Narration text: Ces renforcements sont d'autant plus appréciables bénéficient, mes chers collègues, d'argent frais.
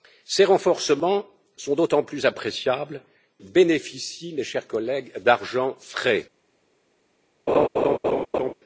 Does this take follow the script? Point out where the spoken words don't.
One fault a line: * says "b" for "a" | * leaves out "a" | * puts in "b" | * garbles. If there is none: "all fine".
all fine